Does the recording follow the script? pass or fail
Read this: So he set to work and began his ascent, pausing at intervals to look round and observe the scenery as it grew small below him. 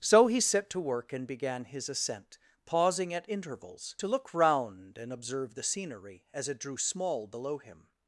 fail